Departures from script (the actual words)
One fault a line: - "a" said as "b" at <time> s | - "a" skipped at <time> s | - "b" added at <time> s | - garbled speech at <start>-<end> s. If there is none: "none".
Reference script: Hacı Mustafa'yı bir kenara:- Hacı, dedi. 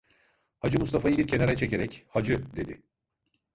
- "çekerek" added at 1.6 s